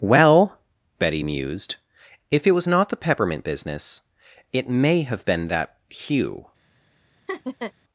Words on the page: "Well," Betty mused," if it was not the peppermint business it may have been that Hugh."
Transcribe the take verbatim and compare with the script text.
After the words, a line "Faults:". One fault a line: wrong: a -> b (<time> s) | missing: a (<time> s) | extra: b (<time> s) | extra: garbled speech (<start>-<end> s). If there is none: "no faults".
"Well," Betty mused," if it was not the peppermint business it may have been that Hugh."
Faults:
no faults